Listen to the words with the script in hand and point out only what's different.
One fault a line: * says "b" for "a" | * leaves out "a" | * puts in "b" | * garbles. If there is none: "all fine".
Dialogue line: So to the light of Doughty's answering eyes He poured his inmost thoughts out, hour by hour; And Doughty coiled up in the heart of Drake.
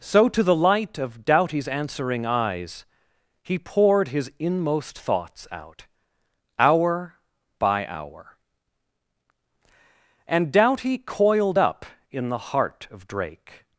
all fine